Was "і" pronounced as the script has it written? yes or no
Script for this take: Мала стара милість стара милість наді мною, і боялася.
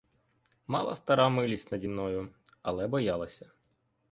no